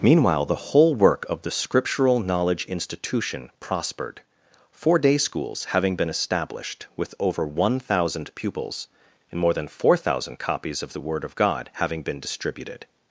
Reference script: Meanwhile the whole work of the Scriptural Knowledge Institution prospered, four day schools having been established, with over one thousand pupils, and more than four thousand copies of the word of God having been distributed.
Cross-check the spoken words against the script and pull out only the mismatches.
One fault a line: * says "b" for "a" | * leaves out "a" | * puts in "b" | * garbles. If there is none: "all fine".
all fine